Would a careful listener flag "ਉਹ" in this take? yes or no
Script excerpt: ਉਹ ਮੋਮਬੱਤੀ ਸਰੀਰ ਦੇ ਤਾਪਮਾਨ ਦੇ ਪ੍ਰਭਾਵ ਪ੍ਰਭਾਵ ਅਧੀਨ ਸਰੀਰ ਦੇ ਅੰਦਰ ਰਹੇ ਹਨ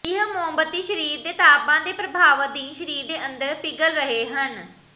yes